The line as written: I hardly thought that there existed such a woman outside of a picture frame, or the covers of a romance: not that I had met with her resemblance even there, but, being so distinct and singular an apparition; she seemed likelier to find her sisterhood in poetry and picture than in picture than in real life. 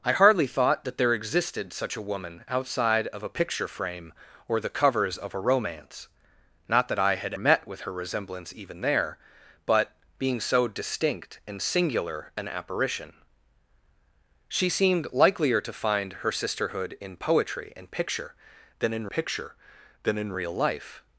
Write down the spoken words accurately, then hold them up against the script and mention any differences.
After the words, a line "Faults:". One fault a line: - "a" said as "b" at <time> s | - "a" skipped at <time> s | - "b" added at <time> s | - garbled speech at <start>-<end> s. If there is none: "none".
I hardly thought that there existed such a woman outside of a picture frame, or the covers of a romance: not that I had met with her resemblance even there, but, being so distinct and singular an apparition; she seemed likelier to find her sisterhood in poetry and picture than in picture than in real life.
Faults:
none